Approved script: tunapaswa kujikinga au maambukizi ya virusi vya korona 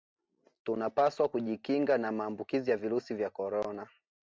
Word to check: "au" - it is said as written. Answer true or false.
false